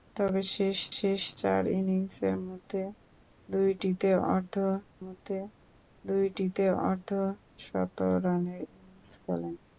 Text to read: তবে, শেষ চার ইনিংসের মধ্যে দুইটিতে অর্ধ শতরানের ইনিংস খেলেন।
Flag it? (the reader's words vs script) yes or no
yes